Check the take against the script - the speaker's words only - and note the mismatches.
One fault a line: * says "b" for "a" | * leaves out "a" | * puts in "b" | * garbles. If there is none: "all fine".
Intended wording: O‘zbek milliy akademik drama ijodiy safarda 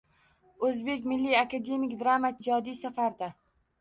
all fine